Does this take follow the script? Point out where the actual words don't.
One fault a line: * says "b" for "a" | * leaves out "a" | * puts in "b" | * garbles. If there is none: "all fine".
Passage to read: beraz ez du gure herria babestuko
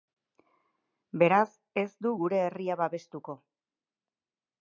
all fine